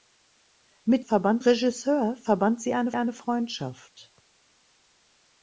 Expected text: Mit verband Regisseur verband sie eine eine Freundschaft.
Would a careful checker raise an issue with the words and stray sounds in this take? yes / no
no